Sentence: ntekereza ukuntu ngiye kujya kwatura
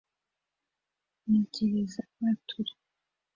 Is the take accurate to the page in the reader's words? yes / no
no